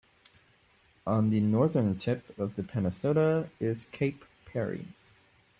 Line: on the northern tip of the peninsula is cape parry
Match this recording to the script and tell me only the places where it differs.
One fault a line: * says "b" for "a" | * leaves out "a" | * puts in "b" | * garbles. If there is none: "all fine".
all fine